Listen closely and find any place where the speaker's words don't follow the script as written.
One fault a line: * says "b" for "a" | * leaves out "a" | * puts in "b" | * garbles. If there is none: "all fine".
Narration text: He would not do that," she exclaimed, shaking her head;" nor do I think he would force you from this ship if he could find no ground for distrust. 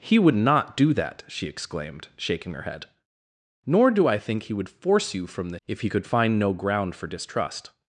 * leaves out "ship"